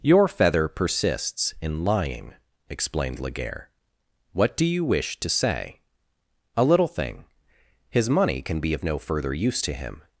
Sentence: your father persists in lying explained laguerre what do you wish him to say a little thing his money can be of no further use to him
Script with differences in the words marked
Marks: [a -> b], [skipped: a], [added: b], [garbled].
your [father -> feather] persists in lying explained laguerre what do you wish [skipped: him] to say a little thing his money can be of no further use to him